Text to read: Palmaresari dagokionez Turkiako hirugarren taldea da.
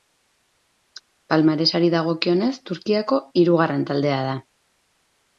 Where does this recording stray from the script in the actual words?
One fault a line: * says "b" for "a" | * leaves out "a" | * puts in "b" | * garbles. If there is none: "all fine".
all fine